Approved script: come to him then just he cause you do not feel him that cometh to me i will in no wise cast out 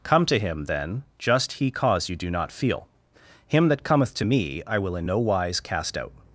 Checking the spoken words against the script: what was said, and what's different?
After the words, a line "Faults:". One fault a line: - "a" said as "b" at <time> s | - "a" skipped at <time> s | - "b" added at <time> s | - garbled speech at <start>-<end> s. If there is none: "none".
come to him then just he cause you do not feel him that cometh to me i will in no wise cast out
Faults:
none